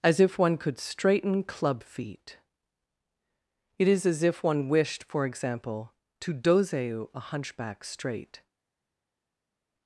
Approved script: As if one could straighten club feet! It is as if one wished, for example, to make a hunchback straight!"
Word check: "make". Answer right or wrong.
wrong